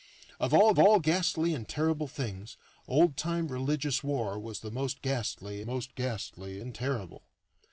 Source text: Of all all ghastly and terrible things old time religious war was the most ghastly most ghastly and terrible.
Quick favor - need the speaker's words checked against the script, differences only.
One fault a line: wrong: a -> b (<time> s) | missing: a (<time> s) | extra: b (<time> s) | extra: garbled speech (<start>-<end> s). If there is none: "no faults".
no faults